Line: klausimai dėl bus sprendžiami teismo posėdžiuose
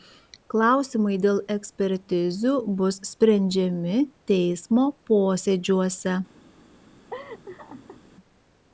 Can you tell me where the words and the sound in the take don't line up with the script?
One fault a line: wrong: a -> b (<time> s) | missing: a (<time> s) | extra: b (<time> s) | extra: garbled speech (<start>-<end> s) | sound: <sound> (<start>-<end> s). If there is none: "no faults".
extra: ekspertizių (1.6 s)
sound: laugh (7.1-8.0 s)